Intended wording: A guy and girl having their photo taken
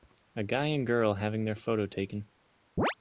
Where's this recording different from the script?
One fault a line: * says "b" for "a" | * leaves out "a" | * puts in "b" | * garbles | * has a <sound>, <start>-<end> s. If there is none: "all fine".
* has a chirp, 2.8-2.9 s